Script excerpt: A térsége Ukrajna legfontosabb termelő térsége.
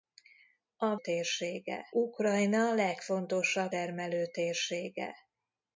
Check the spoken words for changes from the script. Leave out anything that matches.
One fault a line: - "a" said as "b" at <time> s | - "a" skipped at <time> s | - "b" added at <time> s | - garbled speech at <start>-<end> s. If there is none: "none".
none